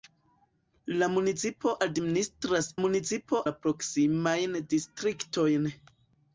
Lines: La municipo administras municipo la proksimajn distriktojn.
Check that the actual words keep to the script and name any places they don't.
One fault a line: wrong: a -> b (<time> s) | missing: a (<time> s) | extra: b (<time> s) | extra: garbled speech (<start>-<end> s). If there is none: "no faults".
no faults